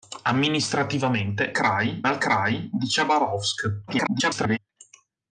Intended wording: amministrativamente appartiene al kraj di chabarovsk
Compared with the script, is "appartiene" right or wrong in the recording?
wrong